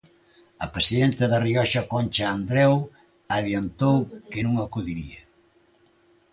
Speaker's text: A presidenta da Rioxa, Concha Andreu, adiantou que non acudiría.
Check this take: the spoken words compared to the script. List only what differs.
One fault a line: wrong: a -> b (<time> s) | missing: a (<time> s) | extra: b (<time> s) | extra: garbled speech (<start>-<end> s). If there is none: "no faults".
no faults